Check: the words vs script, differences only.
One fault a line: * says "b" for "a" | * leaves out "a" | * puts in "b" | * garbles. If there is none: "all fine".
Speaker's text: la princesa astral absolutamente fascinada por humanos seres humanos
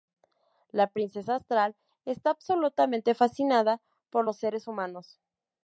* puts in "está"
* says "los" for "humanos"